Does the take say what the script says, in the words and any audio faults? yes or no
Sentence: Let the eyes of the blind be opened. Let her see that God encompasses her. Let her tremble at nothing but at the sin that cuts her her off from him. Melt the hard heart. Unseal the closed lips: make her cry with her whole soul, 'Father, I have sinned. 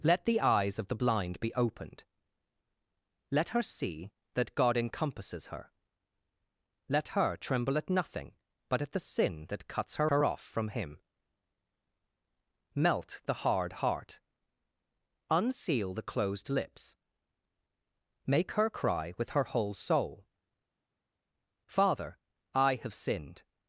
yes